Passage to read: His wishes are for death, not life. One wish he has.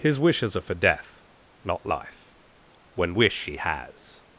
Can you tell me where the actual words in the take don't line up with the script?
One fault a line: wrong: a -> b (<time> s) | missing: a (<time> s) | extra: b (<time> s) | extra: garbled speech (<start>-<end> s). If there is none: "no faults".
wrong: One -> When (3.0 s)